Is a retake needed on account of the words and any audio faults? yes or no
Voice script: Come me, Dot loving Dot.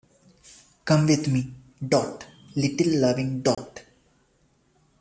yes